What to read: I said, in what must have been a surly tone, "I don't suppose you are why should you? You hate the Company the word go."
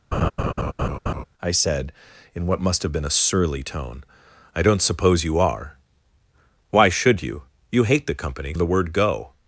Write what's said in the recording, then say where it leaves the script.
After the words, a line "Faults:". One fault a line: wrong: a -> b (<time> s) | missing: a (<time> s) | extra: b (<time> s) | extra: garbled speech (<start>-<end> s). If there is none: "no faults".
I said, in what must have been a surly tone, "I don't suppose you are why should you? You hate the Company the word go."
Faults:
no faults